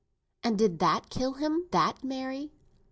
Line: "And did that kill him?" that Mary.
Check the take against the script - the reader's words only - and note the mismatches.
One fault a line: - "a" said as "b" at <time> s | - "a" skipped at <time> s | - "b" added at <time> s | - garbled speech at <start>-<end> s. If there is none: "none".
none